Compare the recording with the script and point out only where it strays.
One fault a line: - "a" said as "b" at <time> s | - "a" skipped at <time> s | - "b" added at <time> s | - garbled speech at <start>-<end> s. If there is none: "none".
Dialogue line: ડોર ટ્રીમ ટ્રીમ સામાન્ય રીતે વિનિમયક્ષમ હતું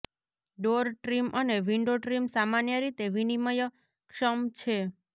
- "અને વિન્ડો" added at 1.4 s
- "હતું" said as "છે" at 4.6 s